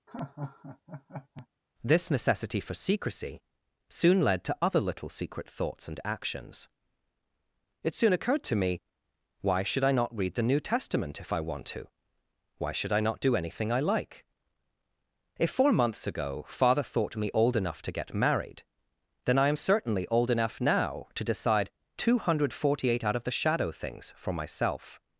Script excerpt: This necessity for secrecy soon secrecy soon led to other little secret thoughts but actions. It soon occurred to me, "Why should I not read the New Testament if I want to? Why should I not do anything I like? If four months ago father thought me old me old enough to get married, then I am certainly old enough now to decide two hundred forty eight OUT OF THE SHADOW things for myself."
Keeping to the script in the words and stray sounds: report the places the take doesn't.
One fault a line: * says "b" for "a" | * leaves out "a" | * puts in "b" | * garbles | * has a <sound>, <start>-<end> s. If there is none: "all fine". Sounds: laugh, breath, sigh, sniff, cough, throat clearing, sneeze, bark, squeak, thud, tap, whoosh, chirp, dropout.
* has a laugh, 0.1-1.5 s
* leaves out "secrecy soon"
* says "and" for "but"
* leaves out "me old"